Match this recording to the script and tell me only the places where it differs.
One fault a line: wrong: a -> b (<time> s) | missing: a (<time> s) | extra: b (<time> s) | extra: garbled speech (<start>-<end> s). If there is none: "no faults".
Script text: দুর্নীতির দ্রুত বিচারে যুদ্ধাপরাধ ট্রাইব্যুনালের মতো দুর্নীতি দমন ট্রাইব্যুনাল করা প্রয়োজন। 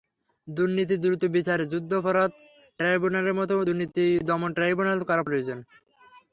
no faults